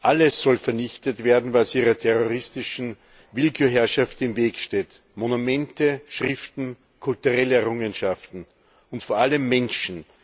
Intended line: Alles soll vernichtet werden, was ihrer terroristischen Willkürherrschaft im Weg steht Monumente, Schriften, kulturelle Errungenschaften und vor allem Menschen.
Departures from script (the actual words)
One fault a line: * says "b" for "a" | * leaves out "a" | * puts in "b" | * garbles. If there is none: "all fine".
all fine